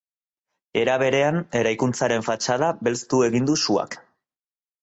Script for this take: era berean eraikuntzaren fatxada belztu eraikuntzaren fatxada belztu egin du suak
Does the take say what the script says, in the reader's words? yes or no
no